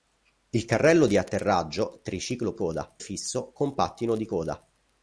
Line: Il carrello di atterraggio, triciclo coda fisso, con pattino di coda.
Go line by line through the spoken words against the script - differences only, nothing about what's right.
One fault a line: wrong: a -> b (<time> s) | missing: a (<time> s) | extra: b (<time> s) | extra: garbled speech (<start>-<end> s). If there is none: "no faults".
no faults